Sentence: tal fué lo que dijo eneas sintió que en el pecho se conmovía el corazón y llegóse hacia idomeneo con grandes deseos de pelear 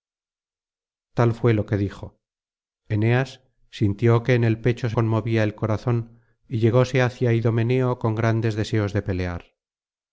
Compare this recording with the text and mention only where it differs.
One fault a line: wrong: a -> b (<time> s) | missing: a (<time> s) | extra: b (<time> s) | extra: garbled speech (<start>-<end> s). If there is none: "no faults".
no faults